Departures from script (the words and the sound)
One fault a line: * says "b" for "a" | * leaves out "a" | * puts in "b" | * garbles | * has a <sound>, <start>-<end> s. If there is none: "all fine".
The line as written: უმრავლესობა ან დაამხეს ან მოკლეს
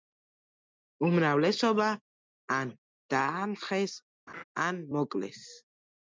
* has a laugh, 4.3-4.4 s